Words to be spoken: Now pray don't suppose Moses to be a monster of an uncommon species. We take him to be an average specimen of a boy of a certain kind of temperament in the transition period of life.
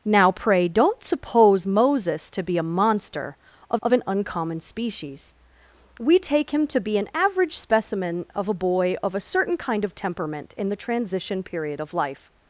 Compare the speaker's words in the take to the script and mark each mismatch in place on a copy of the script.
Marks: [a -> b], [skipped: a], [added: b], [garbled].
Now pray don't suppose Moses to be a monster of [added: of] an uncommon species. We take him to be an average specimen of a boy of a certain kind of temperament in the transition period of life.